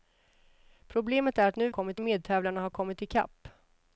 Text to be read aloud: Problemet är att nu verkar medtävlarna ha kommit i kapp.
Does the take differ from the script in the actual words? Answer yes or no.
yes